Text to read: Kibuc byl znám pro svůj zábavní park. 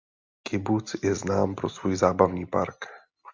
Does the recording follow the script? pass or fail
fail